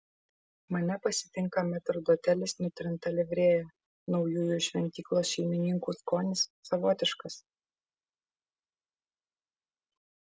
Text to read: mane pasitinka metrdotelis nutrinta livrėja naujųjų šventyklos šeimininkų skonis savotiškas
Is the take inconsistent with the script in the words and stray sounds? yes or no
no